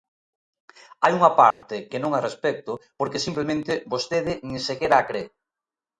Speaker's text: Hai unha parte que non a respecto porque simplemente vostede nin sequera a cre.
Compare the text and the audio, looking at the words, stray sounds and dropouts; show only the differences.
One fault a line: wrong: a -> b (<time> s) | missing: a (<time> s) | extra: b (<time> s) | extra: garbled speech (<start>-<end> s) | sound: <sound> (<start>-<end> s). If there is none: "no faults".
sound: dropout (1.5-1.6 s)